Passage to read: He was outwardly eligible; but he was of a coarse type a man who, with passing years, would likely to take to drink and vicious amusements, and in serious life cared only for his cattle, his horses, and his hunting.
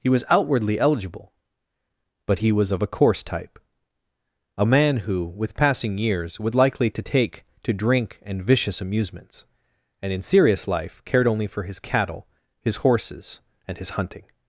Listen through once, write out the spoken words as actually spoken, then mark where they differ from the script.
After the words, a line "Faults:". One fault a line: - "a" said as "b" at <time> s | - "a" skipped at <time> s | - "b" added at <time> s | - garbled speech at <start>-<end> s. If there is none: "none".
He was outwardly eligible; but he was of a coarse type a man who, with passing years, would likely to take to drink and vicious amusements, and in serious life cared only for his cattle, his horses, and his hunting.
Faults:
none